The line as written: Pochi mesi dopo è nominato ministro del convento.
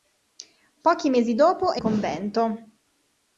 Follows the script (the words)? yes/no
no